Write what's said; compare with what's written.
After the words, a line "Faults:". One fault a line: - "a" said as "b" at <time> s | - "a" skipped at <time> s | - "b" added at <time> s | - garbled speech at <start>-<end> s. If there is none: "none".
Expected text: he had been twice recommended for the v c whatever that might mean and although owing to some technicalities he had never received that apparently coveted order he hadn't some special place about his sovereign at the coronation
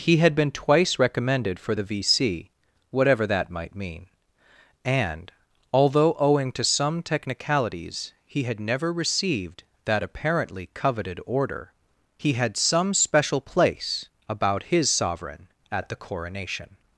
he had been twice recommended for the v c whatever that might mean and although owing to some technicalities he had never received that apparently coveted order he had some special place about his sovereign at the coronation
Faults:
- "hadn't" said as "had" at 12.3 s